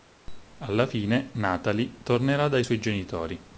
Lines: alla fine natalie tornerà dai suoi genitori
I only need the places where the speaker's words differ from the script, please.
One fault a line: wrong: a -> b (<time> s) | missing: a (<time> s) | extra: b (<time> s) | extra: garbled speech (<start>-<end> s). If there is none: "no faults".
no faults